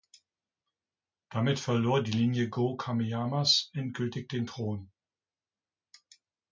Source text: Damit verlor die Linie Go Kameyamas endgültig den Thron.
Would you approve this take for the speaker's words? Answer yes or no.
yes